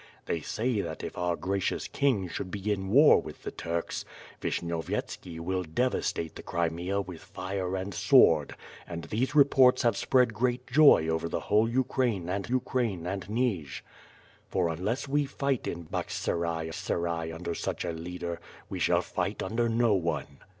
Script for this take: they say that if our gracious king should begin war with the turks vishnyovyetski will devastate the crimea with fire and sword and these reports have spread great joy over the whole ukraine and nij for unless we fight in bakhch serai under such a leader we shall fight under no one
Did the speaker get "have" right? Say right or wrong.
right